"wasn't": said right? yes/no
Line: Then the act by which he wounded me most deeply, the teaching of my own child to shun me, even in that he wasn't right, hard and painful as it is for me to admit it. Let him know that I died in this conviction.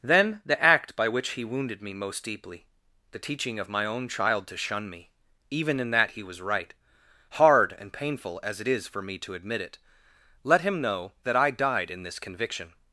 no